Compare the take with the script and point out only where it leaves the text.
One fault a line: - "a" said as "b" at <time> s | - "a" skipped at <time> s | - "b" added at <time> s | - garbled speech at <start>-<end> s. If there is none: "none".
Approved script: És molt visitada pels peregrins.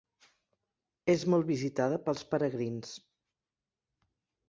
none